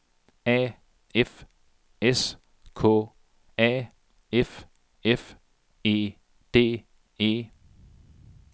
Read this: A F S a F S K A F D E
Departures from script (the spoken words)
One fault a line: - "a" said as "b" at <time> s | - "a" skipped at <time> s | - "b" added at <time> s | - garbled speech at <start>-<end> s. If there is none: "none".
- "K" added at 2.7 s
- "S K A F" said as "F E" at 5.0 s